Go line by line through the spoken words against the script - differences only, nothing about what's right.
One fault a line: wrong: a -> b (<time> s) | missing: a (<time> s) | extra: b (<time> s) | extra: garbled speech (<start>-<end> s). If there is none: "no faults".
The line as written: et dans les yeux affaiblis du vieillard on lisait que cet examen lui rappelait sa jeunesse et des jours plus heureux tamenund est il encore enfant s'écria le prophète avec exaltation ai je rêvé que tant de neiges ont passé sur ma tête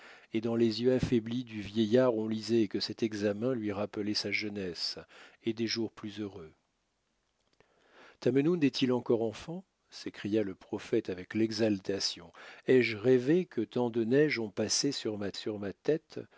extra: sur ma (15.3 s)